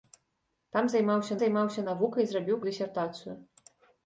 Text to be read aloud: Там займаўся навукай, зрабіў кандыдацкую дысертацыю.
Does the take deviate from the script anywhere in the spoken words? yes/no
yes